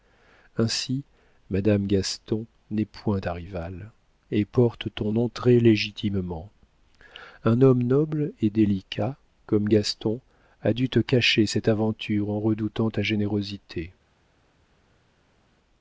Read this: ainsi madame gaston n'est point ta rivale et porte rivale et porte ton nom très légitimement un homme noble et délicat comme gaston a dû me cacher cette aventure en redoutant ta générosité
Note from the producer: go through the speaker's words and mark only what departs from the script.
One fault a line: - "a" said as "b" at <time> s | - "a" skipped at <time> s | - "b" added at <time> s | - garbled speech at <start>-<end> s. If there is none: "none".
- "rivale et porte" skipped at 4.9 s
- "me" said as "te" at 10.9 s